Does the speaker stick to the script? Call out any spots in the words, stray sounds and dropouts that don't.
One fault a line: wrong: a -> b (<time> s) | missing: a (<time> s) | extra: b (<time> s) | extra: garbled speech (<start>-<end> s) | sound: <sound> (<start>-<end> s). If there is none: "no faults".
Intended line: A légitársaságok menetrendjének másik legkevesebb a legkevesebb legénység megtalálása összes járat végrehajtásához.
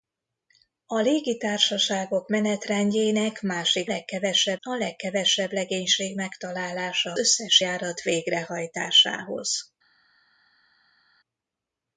no faults